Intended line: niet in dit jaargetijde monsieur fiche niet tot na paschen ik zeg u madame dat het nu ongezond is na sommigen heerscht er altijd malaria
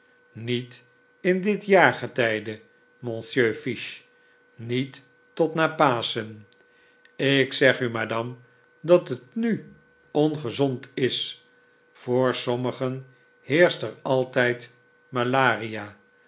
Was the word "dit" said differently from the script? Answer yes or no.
no